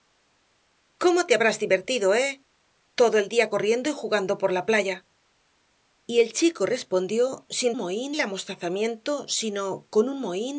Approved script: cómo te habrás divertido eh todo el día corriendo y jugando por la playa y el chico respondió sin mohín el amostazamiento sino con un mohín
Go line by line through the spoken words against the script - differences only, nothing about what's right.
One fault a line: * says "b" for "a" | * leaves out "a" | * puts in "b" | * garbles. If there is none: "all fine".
all fine